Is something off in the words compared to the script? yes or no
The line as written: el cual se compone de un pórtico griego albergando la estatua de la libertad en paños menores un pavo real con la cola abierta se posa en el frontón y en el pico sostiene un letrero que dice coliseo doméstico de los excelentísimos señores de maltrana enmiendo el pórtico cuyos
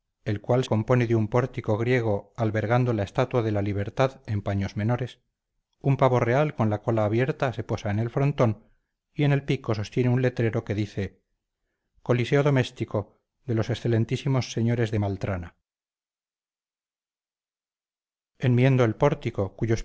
yes